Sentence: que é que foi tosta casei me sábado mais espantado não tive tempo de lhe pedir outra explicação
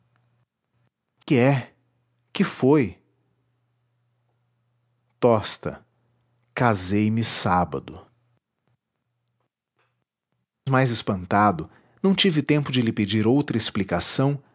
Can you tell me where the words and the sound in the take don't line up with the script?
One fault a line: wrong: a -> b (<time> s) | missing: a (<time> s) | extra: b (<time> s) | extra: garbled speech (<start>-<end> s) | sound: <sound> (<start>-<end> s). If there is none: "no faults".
sound: dropout (1.2-1.3 s)